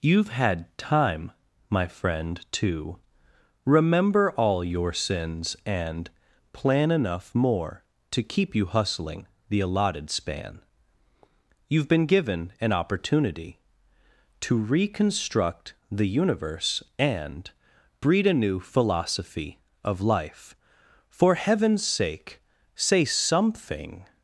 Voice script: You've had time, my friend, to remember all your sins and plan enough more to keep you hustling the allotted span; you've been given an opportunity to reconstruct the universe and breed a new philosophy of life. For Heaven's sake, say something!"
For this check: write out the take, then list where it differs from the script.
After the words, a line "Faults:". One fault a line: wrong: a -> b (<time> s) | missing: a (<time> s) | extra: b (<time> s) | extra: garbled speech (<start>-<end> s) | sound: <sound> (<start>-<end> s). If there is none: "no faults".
You've had time, my friend, to remember all your sins and plan enough more to keep you hustling the allotted span; you've been given an opportunity to reconstruct the universe and breed a new philosophy of life. For Heaven's sake, say something!"
Faults:
no faults